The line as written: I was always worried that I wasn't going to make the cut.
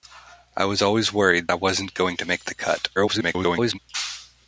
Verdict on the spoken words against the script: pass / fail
fail